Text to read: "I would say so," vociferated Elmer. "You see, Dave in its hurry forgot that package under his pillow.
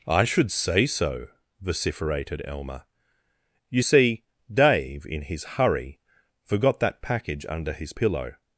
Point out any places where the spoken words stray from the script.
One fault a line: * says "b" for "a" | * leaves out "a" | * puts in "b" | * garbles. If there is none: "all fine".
* says "should" for "would"
* says "his" for "its"